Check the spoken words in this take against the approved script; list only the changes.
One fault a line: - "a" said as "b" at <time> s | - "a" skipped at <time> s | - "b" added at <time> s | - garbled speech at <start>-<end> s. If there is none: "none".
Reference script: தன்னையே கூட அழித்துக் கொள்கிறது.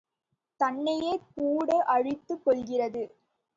none